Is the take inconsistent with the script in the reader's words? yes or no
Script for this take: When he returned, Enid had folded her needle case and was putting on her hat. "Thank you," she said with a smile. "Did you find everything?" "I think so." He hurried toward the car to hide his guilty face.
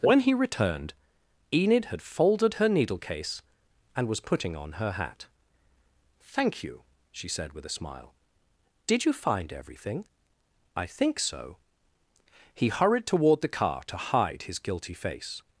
no